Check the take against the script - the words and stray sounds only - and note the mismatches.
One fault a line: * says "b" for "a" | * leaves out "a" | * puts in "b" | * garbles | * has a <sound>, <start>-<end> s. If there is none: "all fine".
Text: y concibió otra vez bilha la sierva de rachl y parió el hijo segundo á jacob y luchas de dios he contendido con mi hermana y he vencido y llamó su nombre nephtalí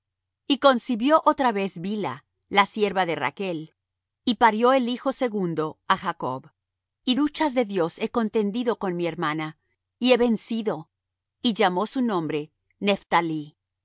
all fine